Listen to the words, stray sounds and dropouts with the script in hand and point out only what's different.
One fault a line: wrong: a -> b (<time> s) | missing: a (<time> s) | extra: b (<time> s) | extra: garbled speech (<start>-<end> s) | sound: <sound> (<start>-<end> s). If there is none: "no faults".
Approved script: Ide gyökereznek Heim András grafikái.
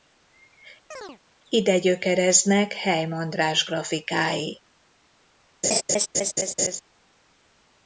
sound: chirp (0.9-1.2 s)
sound: laugh (5.6-6.8 s)